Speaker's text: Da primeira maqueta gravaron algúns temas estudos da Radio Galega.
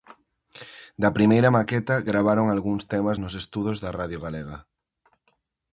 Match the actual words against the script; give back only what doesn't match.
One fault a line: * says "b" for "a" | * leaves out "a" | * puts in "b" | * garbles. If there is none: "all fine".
* puts in "nos"